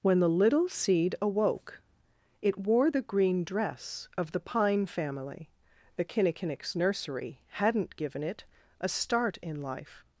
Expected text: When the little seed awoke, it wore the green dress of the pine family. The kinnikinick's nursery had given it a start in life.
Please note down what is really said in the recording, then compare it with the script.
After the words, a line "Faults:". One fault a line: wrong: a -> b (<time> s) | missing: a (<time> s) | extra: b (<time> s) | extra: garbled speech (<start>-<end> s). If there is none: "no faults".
When the little seed awoke, it wore the green dress of the pine family. The kinnikinick's nursery hadn't given it a start in life.
Faults:
wrong: had -> hadn't (7.5 s)